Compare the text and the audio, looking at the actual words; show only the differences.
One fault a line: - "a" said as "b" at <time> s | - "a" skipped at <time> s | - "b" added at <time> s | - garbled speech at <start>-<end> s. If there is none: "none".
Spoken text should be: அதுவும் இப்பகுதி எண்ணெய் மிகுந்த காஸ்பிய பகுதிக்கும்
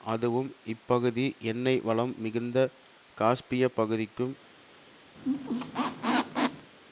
- "வளம்" added at 1.8 s